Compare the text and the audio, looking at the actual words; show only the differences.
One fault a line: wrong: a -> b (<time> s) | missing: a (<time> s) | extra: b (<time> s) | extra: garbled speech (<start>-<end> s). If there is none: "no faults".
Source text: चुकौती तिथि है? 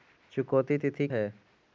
no faults